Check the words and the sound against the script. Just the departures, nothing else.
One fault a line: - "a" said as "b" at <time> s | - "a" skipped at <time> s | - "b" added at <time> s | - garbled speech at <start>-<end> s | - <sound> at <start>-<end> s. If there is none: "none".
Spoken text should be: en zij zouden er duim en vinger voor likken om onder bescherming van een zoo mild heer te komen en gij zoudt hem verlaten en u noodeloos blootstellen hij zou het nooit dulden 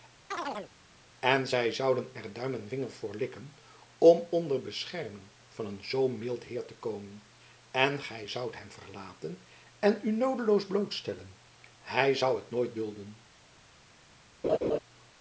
- chirp at 0.3-0.7 s
- laugh at 14.4-14.8 s